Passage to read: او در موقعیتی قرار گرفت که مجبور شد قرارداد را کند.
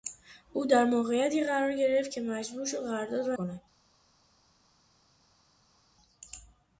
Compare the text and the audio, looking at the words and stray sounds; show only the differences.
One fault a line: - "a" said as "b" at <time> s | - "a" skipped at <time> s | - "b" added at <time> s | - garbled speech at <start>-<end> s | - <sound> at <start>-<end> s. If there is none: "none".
none